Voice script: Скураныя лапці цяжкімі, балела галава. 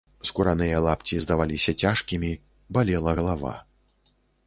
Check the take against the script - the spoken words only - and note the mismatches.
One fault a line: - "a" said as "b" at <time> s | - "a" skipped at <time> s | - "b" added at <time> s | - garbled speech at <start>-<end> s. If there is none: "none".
- "здаваліся" added at 1.2 s